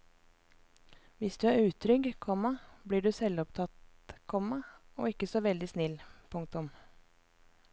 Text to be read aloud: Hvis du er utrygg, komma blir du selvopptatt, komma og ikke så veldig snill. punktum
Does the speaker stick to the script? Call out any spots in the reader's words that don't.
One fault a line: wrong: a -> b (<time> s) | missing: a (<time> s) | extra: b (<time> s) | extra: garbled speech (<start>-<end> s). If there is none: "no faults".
no faults